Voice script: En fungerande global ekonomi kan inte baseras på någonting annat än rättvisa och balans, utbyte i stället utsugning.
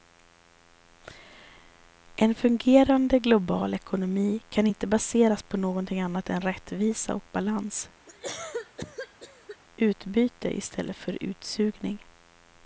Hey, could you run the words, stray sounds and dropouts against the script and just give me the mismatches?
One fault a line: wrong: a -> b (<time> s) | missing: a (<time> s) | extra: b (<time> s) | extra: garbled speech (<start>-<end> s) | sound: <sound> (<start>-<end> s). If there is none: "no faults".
sound: cough (8.1-9.6 s)
extra: för (11.0 s)